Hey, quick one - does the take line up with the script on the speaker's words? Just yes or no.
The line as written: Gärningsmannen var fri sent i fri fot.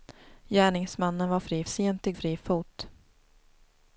yes